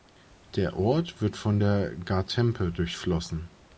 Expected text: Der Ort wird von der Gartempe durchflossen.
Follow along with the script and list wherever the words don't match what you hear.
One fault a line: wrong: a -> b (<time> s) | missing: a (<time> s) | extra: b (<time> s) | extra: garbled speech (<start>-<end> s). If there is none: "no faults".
no faults